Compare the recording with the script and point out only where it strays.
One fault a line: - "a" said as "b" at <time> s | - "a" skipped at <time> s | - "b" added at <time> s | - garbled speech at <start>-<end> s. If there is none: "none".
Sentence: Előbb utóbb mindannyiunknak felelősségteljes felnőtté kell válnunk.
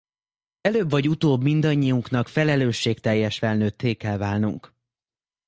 - "vagy" added at 0.9 s